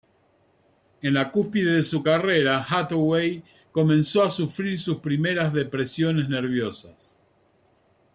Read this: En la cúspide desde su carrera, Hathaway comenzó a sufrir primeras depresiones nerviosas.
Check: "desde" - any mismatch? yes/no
yes